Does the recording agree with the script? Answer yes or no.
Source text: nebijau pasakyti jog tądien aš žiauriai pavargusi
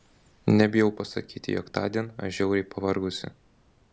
yes